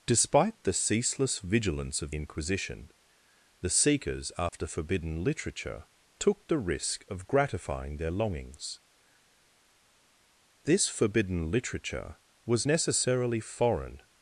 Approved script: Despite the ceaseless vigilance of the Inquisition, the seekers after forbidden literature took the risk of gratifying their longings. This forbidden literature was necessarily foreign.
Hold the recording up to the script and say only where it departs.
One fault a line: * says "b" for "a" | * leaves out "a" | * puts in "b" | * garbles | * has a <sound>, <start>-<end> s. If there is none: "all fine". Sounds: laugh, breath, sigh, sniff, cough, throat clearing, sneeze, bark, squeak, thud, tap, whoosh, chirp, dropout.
* leaves out "the"
* has a dropout, 4.5-4.5 s